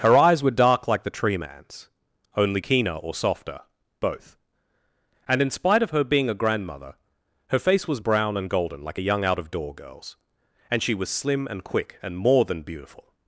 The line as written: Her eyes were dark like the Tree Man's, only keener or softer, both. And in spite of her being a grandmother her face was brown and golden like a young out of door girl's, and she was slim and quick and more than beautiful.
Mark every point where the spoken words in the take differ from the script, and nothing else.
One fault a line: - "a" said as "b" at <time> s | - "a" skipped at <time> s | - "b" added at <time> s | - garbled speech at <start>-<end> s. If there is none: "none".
none